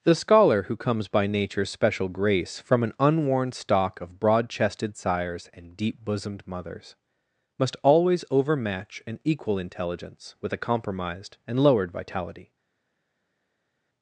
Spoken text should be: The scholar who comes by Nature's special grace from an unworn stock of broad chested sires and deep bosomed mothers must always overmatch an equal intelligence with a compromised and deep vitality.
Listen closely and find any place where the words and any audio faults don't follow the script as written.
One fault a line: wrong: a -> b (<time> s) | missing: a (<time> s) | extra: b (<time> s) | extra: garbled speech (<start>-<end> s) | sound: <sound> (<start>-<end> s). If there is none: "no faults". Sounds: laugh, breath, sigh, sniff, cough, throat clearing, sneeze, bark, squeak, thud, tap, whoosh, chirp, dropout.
wrong: deep -> lowered (11.6 s)